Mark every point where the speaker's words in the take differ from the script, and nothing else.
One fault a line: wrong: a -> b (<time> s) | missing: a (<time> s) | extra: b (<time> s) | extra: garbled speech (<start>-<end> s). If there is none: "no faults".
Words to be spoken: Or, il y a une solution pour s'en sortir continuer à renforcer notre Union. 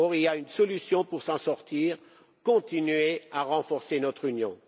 no faults